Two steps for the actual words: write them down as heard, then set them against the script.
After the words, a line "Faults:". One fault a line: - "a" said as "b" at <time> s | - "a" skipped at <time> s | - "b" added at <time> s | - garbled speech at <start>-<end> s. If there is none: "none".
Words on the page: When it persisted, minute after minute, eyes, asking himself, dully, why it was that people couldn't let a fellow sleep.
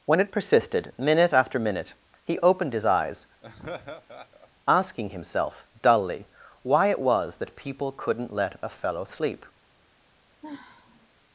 When it persisted, minute after minute, he opened his eyes, asking himself, dully, why it was that people couldn't let a fellow sleep.
Faults:
- "he opened his" added at 2.2 s